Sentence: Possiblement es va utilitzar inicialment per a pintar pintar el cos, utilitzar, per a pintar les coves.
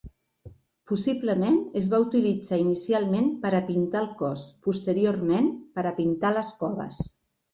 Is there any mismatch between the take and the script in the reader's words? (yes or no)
yes